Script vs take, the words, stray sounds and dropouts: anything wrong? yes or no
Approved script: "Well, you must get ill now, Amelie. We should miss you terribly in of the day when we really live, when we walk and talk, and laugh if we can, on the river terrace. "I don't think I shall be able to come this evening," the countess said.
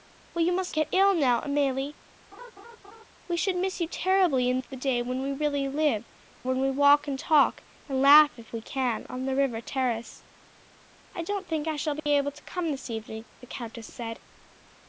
yes